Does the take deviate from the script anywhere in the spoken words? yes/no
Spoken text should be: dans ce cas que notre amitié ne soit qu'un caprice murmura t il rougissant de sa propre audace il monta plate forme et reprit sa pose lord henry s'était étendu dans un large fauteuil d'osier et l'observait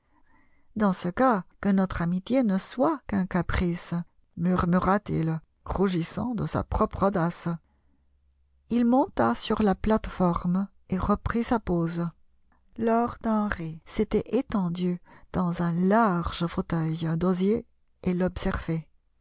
yes